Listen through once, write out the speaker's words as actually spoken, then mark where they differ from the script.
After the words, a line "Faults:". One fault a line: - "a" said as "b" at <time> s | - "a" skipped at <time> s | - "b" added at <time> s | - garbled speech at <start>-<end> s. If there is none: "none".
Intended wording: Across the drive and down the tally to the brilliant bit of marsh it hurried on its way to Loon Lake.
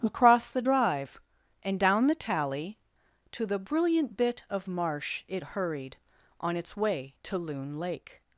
Across the drive and down the tally to the brilliant bit of marsh it hurried on its way to Loon Lake.
Faults:
none